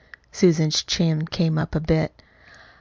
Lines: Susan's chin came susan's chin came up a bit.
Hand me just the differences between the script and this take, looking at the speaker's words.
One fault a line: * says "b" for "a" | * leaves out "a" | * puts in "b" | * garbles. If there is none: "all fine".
* leaves out "susan's chin came"